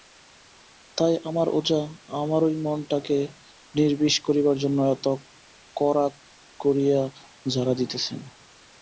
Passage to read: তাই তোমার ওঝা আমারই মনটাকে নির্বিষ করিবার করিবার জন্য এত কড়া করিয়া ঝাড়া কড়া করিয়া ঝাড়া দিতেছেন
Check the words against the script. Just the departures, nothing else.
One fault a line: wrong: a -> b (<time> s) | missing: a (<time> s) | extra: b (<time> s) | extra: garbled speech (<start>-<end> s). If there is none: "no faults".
wrong: তোমার -> আমার (1.3 s)
missing: করিবার (4.5 s)
missing: কড়া করিয়া ঝাড়া (7.7 s)